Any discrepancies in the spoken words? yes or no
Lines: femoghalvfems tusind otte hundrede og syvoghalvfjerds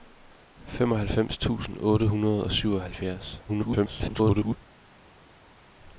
yes